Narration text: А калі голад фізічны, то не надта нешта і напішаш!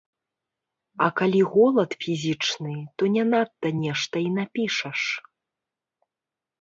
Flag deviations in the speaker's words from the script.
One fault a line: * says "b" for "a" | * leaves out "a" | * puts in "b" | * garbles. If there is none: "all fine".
all fine